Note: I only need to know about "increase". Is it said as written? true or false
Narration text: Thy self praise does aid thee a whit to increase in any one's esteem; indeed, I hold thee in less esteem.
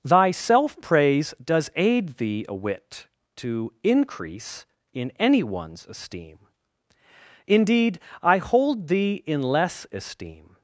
true